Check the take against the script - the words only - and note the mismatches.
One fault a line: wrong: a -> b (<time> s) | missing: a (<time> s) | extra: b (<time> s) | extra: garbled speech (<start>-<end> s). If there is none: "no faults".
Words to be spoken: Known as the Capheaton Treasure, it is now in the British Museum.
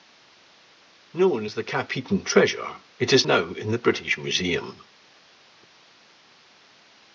no faults